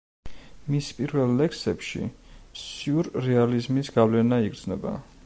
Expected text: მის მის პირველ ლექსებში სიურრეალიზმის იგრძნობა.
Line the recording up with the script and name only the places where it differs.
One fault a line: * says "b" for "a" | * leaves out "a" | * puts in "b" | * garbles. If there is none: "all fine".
* leaves out "მის"
* puts in "გავლენა"